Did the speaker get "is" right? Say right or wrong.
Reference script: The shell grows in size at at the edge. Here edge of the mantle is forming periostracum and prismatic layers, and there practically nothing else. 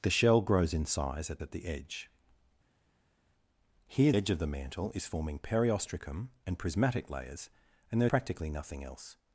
right